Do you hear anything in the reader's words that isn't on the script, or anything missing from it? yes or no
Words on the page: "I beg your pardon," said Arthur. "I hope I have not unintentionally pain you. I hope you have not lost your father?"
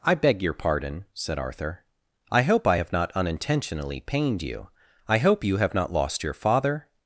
yes